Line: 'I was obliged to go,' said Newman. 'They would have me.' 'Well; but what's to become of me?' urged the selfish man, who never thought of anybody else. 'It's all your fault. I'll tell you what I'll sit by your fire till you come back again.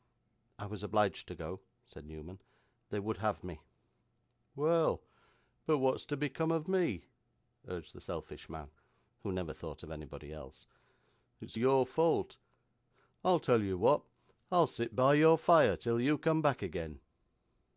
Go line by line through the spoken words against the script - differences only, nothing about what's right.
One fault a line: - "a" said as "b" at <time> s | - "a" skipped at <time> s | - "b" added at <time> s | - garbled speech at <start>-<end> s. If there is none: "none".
- "all" skipped at 11.6 s